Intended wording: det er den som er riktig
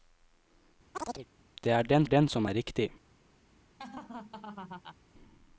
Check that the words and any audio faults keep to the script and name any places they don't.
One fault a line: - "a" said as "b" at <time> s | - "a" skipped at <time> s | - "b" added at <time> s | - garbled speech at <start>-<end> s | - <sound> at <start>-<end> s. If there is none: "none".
- chirp at 0.9-1.3 s
- "den" added at 2.0 s
- laugh at 3.8-5.0 s